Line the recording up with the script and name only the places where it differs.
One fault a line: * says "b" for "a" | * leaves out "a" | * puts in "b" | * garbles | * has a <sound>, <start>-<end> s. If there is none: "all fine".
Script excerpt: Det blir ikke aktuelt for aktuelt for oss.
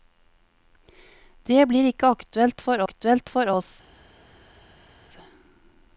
all fine